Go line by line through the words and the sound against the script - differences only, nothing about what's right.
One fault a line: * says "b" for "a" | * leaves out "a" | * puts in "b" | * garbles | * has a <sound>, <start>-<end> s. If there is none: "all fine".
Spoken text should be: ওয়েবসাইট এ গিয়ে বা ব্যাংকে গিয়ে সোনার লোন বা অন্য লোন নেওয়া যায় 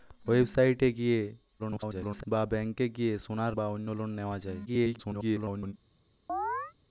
* garbles
* leaves out "লোন"
* garbles
* has a chirp, 6.3-6.7 s